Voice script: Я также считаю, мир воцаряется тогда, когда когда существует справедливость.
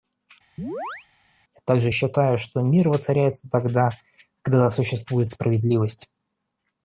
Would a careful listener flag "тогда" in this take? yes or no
no